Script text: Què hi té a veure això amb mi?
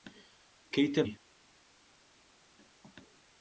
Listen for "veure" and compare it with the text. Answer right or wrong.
wrong